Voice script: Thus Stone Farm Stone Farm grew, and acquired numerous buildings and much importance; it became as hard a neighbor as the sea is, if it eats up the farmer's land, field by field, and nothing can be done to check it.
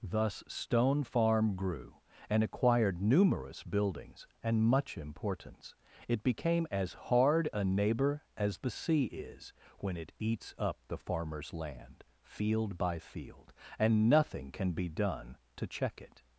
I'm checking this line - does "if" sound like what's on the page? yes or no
no